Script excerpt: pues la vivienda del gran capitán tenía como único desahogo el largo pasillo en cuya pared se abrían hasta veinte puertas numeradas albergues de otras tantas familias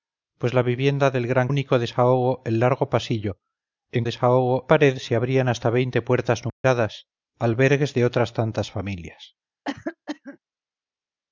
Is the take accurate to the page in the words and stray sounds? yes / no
no